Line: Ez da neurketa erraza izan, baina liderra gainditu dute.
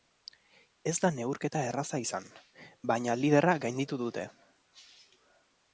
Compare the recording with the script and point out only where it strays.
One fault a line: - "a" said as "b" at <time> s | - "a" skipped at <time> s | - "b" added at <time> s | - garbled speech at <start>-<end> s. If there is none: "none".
none